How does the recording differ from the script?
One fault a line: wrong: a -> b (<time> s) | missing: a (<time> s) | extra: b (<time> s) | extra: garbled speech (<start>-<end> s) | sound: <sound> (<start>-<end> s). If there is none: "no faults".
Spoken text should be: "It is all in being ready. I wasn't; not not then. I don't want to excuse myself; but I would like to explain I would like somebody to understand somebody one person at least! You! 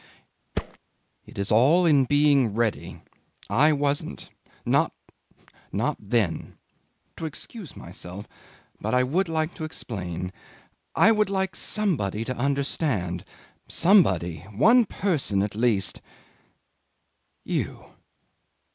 sound: thud (0.5-0.8 s)
missing: I don't want (6.6 s)